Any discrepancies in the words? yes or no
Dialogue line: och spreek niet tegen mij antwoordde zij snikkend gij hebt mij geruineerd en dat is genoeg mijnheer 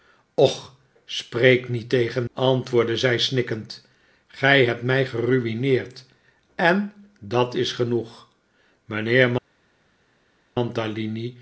yes